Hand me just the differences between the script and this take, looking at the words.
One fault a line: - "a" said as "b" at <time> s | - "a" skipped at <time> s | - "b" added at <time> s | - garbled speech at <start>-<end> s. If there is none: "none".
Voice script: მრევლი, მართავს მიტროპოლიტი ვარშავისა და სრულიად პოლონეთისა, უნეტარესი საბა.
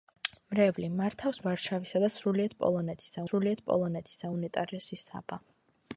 - "მიტროპოლიტი" skipped at 1.4 s
- "სრულიად პოლონეთისა" added at 3.3 s